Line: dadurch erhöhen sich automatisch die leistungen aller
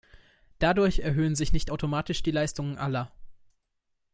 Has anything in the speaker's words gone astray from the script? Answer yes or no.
yes